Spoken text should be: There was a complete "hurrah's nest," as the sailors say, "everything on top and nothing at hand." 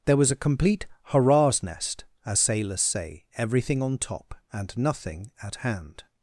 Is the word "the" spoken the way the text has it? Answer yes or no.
no